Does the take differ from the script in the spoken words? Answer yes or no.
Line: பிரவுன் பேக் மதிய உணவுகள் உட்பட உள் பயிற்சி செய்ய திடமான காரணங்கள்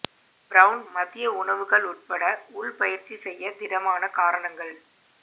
yes